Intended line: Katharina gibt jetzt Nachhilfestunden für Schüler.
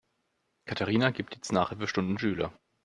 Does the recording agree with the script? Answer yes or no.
no